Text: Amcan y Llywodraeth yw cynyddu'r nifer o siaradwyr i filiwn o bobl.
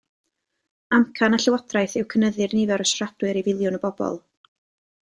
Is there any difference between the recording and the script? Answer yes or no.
no